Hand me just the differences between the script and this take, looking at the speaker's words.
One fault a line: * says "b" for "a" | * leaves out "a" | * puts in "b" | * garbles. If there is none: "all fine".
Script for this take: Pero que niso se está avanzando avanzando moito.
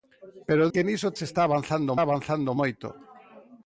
all fine